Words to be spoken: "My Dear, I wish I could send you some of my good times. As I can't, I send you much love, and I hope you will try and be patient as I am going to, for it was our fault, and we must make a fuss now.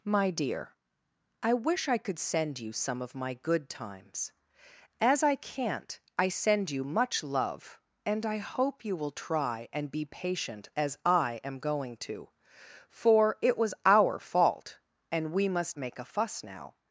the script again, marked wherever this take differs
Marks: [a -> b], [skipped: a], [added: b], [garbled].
"My Dear, I wish I could send you some of my good times. As I can't, I send you much love, and I hope you will try and be patient as I am going to, for it was our fault, and we must make a fuss now.